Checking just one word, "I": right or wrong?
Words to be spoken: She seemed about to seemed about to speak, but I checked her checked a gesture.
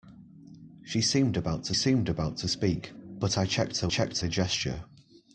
right